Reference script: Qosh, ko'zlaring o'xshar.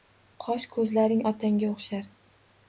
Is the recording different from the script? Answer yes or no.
yes